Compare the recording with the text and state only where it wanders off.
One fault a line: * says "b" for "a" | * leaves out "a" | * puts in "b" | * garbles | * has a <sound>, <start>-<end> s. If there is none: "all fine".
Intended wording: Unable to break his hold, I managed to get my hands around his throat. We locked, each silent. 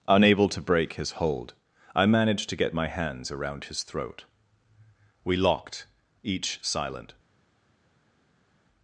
all fine